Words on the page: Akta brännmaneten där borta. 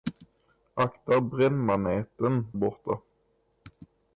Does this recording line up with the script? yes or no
no